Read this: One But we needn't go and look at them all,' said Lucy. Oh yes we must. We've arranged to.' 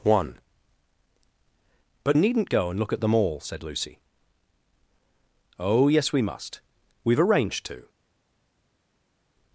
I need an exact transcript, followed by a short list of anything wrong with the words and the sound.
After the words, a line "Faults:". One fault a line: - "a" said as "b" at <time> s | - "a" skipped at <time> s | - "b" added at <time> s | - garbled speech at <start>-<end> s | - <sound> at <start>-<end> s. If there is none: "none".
One But needn't go and look at them all,' said Lucy. Oh yes we must. We've arranged to.'
Faults:
- "we" skipped at 2.2 s